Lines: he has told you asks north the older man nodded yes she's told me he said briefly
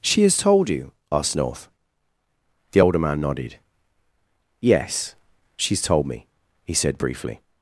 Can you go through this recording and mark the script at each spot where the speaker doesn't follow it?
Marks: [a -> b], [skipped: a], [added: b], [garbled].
[he -> she] has told you [asks -> asked] north the older man nodded yes she's told me he said briefly